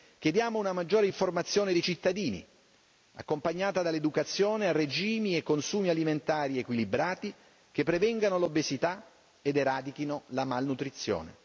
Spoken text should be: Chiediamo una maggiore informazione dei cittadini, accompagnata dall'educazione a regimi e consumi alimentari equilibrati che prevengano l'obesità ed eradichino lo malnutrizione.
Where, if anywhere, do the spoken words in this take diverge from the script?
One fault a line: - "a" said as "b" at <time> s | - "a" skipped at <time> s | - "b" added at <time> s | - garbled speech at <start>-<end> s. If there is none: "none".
- "lo" said as "la" at 10.3 s